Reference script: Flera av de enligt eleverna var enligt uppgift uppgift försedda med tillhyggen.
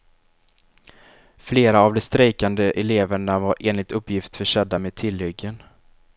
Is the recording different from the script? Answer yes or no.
yes